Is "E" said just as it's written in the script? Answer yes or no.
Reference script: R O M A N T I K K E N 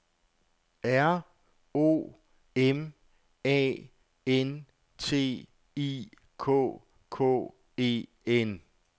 yes